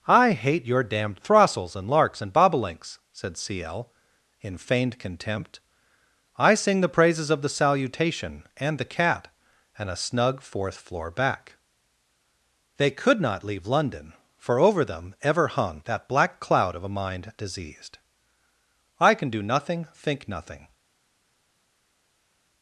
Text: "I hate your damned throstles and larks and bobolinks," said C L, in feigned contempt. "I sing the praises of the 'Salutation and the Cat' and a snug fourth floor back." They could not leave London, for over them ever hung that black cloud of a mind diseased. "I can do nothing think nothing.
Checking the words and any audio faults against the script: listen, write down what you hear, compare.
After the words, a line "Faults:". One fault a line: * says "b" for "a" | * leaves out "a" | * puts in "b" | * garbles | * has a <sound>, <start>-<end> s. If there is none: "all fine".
"I hate your damned throstles and larks and bobolinks," said C L, in feigned contempt. "I sing the praises of the 'Salutation and the Cat' and a snug fourth floor back." They could not leave London, for over them ever hung that black cloud of a mind diseased. "I can do nothing think nothing.
Faults:
all fine